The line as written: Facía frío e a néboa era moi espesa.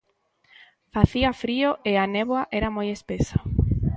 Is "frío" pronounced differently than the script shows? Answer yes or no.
no